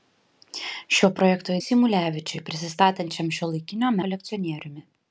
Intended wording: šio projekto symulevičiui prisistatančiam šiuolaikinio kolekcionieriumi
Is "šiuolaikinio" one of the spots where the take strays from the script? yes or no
no